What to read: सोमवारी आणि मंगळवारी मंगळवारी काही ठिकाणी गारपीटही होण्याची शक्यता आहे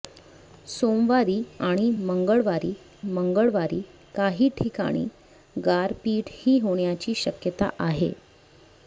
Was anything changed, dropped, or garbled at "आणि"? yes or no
no